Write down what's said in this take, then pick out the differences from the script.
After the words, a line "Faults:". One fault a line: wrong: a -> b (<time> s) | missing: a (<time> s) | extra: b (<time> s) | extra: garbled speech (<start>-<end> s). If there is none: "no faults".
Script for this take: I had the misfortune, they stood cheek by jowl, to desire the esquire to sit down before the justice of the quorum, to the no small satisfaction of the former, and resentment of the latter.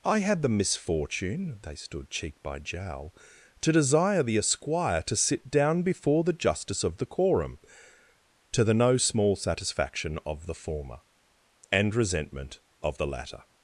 I had the misfortune, they stood cheek by jowl, to desire the esquire to sit down before the justice of the quorum, to the no small satisfaction of the former, and resentment of the latter.
Faults:
no faults